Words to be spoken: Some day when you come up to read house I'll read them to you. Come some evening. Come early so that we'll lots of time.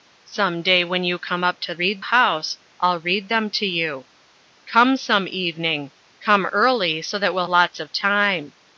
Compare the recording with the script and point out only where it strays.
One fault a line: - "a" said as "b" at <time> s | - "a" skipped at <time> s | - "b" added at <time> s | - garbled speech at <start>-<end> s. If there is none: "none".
none